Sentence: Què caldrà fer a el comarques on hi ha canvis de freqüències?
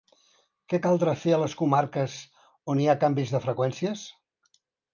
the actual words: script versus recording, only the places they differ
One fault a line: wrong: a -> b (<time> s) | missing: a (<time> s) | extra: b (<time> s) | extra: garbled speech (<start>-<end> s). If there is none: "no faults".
wrong: el -> les (1.4 s)